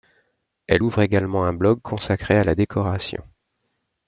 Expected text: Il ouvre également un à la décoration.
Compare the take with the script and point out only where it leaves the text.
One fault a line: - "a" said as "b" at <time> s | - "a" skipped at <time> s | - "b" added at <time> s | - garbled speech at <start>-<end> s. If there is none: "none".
- "Il" said as "Elle" at 0.7 s
- "blog consacré" added at 1.5 s